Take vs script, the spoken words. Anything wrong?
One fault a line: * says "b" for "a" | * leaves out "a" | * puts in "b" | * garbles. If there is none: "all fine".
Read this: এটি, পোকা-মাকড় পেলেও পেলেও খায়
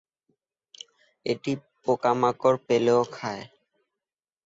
* leaves out "পেলেও"